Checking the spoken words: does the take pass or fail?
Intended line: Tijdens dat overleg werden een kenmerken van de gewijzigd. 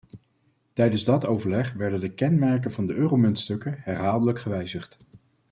fail